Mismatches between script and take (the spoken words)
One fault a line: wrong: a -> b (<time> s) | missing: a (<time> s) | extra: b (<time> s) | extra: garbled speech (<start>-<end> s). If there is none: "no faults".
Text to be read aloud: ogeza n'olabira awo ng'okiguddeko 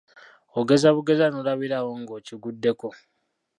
extra: bugeza (0.9 s)